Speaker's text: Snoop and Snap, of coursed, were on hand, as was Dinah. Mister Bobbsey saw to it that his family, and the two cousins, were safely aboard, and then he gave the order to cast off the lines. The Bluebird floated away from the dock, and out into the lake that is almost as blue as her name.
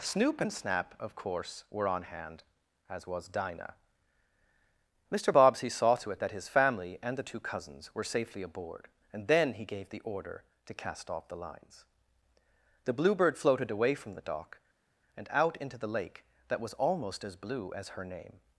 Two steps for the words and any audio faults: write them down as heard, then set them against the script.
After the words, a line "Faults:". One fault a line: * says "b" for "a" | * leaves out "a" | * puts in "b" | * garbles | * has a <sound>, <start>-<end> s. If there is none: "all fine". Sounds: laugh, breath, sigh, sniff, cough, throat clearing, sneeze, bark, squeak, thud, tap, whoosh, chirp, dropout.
Snoop and Snap, of course, were on hand, as was Dinah. Mister Bobbsey saw to it that his family, and the two cousins, were safely aboard, and then he gave the order to cast off the lines. The Bluebird floated away from the dock, and out into the lake that was almost as blue as her name.
Faults:
* says "course" for "coursed"
* says "was" for "is"